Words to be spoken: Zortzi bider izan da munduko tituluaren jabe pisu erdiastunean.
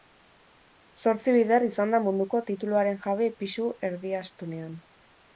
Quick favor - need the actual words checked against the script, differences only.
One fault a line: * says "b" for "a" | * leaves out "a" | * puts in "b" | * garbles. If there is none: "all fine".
all fine